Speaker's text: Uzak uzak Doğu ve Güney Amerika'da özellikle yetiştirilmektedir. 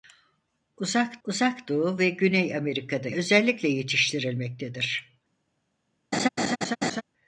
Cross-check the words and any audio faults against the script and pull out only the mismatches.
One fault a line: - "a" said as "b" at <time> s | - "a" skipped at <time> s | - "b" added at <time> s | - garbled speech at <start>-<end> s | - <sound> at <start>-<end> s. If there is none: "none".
- laugh at 6.1-7.0 s